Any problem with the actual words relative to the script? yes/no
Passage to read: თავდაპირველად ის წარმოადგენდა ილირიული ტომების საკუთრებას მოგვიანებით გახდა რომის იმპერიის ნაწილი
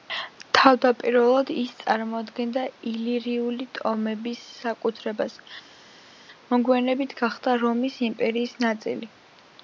no